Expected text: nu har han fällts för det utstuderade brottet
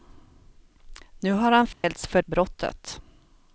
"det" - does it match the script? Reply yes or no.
no